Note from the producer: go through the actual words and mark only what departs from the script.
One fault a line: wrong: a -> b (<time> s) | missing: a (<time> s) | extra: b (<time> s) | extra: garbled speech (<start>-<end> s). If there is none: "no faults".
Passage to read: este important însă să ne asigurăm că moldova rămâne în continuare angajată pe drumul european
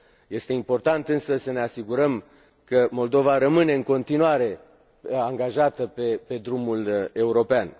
no faults